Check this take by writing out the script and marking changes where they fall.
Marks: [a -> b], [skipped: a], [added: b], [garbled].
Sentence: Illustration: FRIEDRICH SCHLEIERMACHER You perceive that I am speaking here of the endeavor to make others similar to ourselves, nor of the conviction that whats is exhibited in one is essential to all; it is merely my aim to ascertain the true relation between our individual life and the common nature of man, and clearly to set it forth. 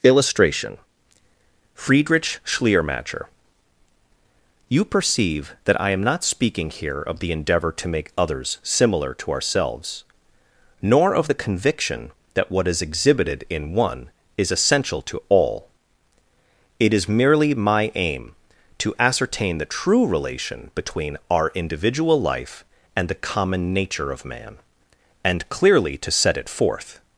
Illustration: FRIEDRICH SCHLEIERMACHER You perceive that I am [added: not] speaking here of the endeavor to make others similar to ourselves, nor of the conviction that [whats -> what] is exhibited in one is essential to all; it is merely my aim to ascertain the true relation between our individual life and the common nature of man, and clearly to set it forth.